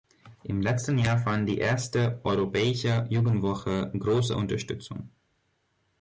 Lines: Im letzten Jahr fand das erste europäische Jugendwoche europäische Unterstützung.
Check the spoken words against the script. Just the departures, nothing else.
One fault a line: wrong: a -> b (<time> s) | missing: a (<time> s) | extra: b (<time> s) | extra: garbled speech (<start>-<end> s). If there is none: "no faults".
wrong: das -> die (1.5 s)
wrong: europäische -> große (4.0 s)